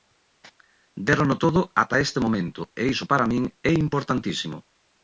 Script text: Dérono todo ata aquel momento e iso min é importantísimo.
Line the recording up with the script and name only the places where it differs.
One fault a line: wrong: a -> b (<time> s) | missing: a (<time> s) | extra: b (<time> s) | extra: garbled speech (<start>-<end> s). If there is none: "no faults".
wrong: aquel -> este (2.0 s)
extra: para (3.1 s)